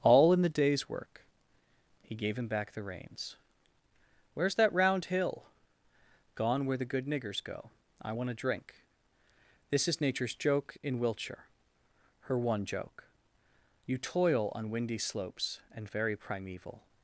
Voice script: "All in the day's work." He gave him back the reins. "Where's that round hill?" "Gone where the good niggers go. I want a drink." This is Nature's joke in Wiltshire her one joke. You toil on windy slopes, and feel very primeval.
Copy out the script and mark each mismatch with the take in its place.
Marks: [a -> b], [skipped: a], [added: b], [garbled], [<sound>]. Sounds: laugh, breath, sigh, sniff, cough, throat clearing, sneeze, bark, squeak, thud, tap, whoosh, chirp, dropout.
"All in the day's work." He gave him back the reins. "Where's that round hill?" "Gone where the good niggers go. I want a drink." This is Nature's joke in Wiltshire her one joke. You toil on windy slopes, and [skipped: feel] very primeval.